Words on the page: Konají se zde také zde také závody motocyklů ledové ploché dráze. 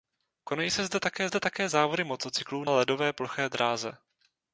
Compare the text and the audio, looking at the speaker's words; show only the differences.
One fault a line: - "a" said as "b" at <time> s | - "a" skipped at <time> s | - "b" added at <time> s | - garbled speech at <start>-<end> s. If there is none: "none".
none